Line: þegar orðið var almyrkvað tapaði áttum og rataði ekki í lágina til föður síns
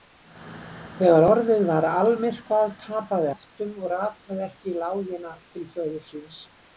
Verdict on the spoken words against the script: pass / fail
pass